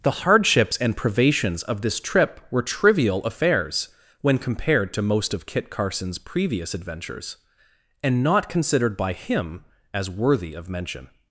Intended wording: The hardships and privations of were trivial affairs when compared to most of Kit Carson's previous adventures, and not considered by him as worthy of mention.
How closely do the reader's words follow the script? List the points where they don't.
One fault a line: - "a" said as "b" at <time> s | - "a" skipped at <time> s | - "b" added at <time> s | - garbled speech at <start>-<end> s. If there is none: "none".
- "this trip" added at 1.8 s